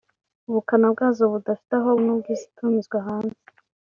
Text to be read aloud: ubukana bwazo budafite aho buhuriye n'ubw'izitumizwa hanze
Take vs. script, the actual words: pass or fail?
fail